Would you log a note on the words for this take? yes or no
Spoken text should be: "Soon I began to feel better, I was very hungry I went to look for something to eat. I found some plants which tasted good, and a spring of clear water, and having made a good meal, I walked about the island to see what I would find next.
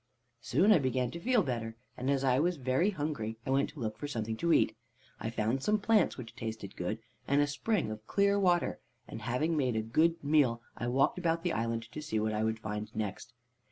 yes